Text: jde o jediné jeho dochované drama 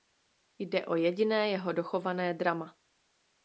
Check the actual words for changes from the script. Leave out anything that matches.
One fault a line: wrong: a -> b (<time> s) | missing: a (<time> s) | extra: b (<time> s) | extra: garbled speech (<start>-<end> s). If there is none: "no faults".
no faults